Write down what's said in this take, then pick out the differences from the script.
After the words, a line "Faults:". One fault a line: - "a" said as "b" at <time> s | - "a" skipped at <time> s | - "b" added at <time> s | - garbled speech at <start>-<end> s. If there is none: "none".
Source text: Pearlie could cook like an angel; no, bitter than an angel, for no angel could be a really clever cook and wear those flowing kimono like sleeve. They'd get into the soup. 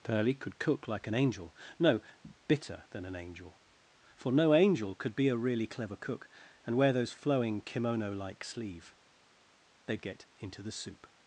Pearlie could cook like an angel; no, bitter than an angel, for no angel could be a really clever cook and wear those flowing kimono like sleeve. They'd get into the soup.
Faults:
none